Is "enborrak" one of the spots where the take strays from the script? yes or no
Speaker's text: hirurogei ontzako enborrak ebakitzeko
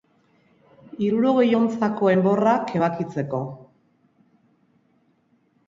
no